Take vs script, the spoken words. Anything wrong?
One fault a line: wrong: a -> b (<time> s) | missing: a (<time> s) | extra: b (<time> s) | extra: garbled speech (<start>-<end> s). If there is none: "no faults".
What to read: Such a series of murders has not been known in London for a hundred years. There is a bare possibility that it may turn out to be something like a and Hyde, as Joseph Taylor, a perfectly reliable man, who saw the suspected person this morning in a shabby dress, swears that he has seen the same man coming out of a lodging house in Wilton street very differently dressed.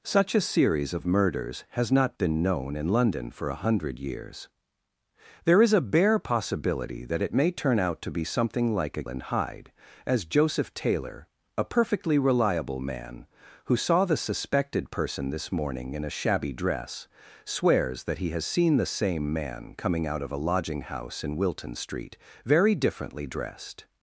no faults